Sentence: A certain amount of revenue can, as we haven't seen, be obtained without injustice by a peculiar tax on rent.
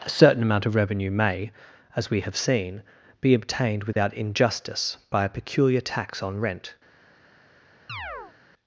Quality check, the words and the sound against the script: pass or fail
fail